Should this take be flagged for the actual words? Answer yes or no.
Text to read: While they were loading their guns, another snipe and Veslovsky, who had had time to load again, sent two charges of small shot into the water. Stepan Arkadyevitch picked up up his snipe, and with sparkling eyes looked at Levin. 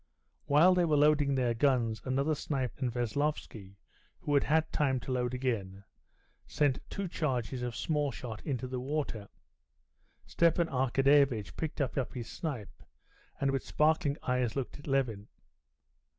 no